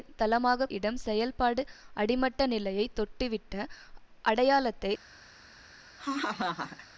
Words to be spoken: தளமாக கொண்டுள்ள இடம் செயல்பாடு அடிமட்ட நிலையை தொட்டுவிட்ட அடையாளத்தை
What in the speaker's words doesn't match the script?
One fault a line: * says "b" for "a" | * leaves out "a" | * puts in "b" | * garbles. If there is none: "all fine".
* leaves out "கொண்டுள்ள"